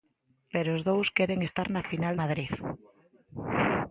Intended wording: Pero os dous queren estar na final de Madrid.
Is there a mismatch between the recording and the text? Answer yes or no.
yes